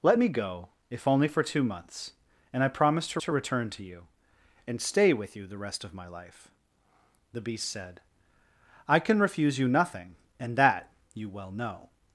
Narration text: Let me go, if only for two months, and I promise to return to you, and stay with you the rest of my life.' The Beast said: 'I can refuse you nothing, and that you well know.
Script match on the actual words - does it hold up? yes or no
no